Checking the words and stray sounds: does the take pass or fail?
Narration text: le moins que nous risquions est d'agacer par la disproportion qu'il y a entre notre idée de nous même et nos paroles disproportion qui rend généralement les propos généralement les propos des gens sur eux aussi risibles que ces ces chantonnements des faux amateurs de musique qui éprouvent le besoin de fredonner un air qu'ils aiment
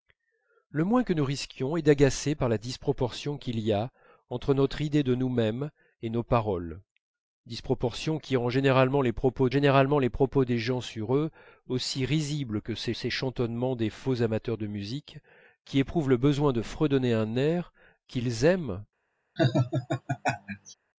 fail